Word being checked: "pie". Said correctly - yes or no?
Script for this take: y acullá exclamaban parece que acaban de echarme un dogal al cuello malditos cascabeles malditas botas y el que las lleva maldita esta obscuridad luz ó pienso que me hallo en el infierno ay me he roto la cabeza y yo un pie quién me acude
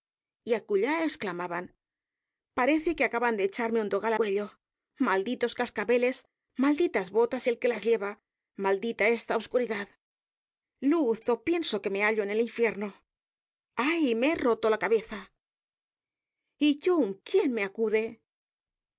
no